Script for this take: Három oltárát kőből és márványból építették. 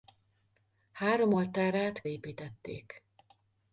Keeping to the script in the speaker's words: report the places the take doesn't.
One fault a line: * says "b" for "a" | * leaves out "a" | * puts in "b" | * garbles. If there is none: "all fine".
* leaves out "kőből és márványból"